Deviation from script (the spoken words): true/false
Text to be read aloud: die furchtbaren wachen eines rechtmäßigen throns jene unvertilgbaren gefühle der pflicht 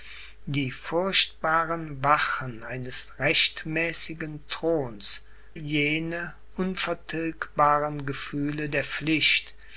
false